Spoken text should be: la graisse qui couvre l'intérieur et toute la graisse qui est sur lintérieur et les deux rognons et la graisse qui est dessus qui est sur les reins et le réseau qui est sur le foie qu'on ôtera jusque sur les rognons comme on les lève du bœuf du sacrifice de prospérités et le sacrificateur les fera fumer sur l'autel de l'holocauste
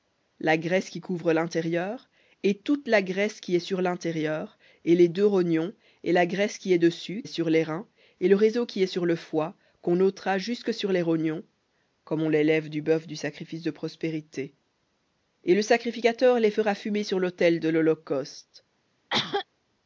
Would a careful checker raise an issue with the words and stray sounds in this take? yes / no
yes